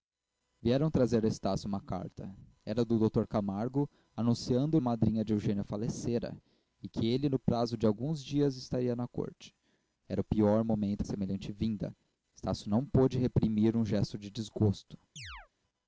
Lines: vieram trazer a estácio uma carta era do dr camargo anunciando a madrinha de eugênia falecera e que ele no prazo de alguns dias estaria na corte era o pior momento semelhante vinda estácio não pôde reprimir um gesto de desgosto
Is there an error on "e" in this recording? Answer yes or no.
no